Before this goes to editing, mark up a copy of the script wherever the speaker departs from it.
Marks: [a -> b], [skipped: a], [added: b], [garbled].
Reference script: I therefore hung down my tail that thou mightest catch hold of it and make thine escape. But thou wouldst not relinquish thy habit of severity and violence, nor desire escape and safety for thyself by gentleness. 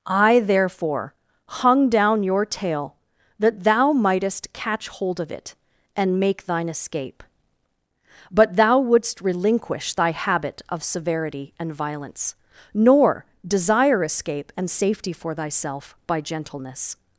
I therefore hung down [my -> your] tail that thou mightest catch hold of it and make thine escape. But thou wouldst [skipped: not] relinquish thy habit of severity and violence, nor desire escape and safety for thyself by gentleness.